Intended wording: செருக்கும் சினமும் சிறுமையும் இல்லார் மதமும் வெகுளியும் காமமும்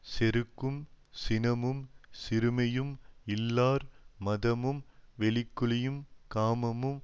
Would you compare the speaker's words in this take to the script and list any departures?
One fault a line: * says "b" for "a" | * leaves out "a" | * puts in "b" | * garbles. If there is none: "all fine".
all fine